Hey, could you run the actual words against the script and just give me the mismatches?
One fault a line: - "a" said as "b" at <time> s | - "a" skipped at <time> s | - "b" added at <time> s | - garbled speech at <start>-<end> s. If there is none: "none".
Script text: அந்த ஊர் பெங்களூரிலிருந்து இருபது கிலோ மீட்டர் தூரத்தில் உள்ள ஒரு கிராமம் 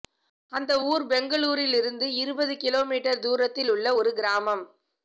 none